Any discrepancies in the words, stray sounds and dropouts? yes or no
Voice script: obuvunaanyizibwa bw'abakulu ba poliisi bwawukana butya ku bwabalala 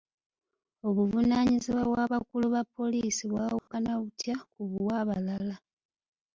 yes